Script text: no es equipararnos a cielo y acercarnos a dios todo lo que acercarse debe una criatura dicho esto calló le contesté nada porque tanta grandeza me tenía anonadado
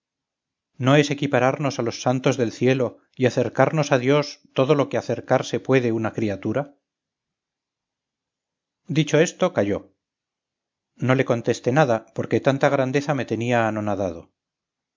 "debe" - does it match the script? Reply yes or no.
no